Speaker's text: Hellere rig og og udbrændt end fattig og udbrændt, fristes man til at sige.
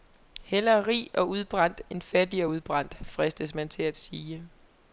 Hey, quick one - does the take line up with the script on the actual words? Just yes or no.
no